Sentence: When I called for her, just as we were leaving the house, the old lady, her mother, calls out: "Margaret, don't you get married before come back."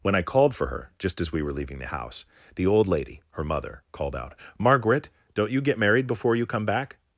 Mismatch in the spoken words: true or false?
true